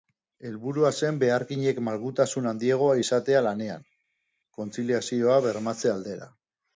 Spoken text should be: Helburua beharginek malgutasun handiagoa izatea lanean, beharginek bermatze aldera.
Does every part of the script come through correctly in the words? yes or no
no